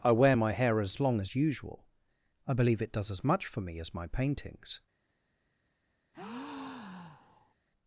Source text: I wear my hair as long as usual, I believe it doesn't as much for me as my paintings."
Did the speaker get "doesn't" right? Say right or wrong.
wrong